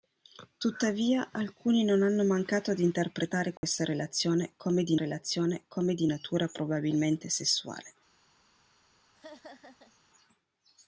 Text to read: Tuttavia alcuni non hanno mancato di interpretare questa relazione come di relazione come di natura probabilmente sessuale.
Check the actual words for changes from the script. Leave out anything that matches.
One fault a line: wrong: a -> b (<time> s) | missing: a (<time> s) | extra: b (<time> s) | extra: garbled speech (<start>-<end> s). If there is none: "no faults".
no faults